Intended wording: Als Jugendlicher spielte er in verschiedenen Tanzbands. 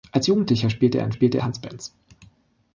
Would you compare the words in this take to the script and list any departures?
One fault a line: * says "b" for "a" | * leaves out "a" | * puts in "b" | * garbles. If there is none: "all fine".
* says "spielte" for "verschiedenen"